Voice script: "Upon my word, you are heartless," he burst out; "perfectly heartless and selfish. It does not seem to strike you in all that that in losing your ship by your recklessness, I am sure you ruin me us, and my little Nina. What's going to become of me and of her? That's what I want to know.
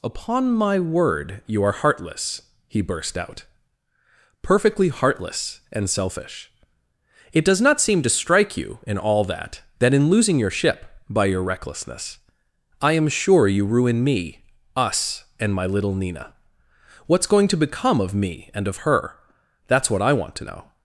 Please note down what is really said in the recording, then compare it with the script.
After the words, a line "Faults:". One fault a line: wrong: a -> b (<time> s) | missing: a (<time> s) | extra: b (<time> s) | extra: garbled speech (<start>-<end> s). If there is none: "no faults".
"Upon my word, you are heartless," he burst out; "perfectly heartless and selfish. It does not seem to strike you in all that that in losing your ship by your recklessness, I am sure you ruin me us, and my little Nina. What's going to become of me and of her? That's what I want to know.
Faults:
no faults